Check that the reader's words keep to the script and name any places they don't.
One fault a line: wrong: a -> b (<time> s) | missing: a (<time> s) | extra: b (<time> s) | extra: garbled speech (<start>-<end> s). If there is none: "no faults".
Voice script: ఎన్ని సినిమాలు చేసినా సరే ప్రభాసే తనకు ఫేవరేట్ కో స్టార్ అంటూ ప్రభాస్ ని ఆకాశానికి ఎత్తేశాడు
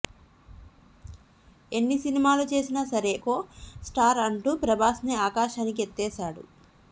missing: ప్రభాసే తనకు ఫేవరేట్ (3.1 s)